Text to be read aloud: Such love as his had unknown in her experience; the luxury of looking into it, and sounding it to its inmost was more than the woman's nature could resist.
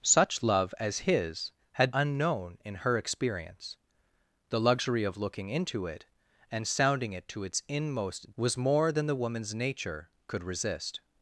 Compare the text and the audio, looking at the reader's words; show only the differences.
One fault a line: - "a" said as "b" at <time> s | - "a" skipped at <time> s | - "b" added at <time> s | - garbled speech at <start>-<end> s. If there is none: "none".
none